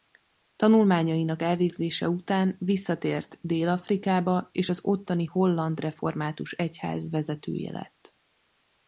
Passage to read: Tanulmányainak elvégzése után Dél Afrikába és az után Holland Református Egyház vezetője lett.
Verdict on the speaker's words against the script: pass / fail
fail